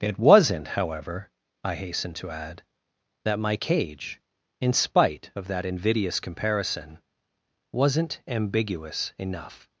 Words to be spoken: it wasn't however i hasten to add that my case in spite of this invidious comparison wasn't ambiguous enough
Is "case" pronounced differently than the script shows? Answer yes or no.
yes